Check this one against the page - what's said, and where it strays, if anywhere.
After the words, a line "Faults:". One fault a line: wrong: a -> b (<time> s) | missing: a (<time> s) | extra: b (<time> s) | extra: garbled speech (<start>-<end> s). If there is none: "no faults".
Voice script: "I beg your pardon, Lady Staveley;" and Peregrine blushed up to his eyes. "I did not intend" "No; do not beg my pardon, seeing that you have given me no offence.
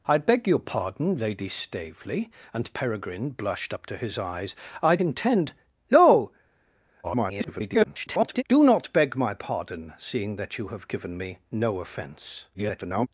"I beg your pardon, Lady Staveley;" and Peregrine blushed up to his eyes. "I intend" "No; [garbled] do not beg my pardon, seeing that you have given me no offence. [garbled]
Faults:
missing: did not (5.0 s)
extra: garbled speech (7.0-8.4 s)
extra: garbled speech (12.5-13.1 s)